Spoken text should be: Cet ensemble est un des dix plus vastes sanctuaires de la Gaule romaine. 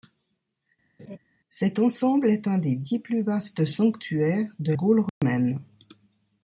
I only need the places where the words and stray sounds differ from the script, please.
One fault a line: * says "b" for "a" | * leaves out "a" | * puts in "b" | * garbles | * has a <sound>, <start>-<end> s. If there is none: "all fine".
* has a laugh, 1.0-1.2 s
* leaves out "la"
* has a dropout, 5.1-5.2 s